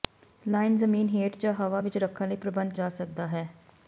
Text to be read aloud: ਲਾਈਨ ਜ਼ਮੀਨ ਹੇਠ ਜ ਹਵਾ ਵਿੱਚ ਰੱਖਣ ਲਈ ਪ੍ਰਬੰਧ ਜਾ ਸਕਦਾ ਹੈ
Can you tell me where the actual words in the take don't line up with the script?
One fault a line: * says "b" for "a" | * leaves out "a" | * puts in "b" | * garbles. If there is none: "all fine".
all fine